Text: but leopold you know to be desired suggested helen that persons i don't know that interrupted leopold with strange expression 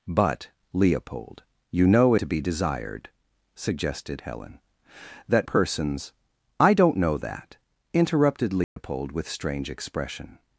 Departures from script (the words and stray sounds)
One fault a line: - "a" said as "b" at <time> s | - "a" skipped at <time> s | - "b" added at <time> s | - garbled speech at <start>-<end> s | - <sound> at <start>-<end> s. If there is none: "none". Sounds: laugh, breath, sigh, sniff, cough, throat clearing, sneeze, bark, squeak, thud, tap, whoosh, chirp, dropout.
- dropout at 8.6-8.8 s